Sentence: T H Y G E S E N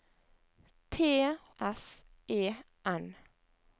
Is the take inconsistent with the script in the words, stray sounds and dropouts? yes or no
yes